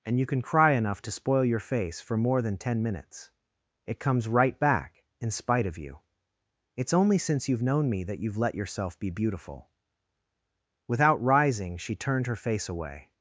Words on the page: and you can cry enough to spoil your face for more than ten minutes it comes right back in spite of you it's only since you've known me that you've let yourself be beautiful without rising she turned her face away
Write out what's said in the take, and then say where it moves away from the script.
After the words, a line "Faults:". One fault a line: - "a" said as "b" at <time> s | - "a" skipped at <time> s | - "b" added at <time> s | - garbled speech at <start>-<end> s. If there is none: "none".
and you can cry enough to spoil your face for more than ten minutes it comes right back in spite of you it's only since you've known me that you've let yourself be beautiful without rising she turned her face away
Faults:
none